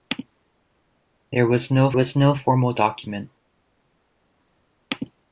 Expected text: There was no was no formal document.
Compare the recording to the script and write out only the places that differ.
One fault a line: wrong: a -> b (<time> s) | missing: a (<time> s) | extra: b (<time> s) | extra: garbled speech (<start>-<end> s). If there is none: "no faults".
no faults